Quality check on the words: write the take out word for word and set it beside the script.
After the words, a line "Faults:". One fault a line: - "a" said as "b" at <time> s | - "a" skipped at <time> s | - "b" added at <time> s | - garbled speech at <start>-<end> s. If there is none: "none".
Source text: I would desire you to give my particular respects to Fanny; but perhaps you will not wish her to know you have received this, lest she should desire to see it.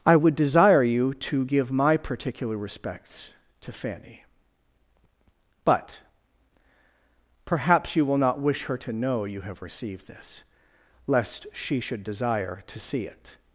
I would desire you to give my particular respects to Fanny; but perhaps you will not wish her to know you have received this, lest she should desire to see it.
Faults:
none